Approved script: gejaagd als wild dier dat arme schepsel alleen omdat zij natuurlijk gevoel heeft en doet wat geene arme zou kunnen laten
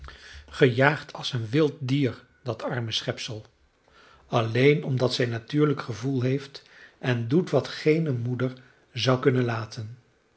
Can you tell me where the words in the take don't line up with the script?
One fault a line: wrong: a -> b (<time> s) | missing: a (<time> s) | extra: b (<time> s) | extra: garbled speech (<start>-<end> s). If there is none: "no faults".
extra: een (1.3 s)
wrong: arme -> moeder (8.1 s)